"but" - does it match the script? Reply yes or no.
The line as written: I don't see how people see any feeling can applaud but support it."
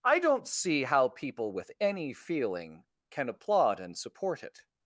no